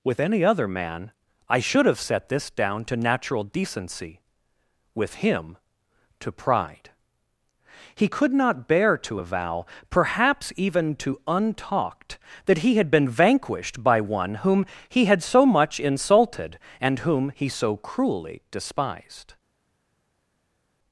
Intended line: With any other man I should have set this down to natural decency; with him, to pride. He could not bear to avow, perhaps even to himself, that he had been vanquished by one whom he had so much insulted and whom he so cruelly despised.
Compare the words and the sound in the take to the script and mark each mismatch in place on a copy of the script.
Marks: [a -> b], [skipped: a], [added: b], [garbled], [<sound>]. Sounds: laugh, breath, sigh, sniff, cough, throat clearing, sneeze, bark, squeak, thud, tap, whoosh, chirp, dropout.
With any other man I should have set this down to natural decency; with him, to pride. He could not bear to avow, perhaps even to [himself, -> untalked] that he had been vanquished by one whom he had so much insulted and whom he so cruelly despised.